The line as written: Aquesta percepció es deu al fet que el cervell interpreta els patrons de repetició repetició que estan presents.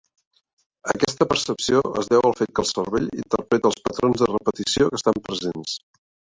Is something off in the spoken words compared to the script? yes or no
yes